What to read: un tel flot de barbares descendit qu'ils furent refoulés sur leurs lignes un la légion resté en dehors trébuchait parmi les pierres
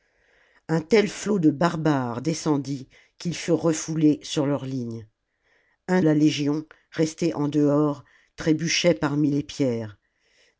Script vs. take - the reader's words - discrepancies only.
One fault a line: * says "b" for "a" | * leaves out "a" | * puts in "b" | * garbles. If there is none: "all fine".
all fine